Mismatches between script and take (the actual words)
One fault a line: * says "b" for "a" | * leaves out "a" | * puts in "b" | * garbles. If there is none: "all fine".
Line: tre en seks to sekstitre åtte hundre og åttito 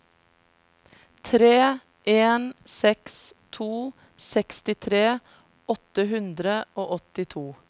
all fine